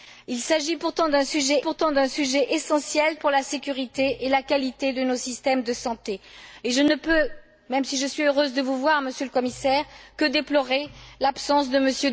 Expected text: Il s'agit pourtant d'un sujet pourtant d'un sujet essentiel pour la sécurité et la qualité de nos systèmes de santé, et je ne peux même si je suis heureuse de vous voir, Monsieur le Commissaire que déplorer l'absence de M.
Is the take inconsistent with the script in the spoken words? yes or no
no